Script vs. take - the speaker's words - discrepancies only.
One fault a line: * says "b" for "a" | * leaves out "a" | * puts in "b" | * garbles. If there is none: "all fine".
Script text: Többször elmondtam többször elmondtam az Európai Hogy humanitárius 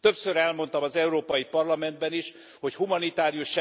* says "az Európai Parlamentben is" for "többször elmondtam az Európai"